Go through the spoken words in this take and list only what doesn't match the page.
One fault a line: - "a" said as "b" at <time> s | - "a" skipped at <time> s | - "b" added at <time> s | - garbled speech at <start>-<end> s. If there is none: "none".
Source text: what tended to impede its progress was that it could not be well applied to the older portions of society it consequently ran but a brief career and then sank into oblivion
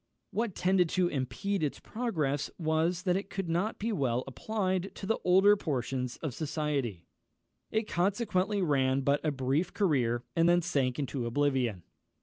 none